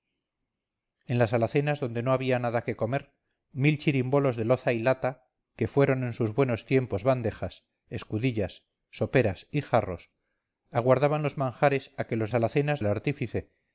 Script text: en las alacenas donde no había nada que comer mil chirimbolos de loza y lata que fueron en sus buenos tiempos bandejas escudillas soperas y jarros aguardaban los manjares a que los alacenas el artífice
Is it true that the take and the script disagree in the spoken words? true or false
false